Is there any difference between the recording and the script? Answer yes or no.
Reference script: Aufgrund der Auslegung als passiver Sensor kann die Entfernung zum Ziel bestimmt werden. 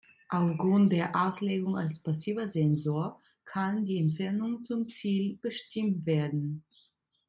no